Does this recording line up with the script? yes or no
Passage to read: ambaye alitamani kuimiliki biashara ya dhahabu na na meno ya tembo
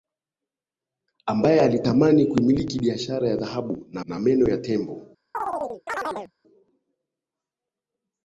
yes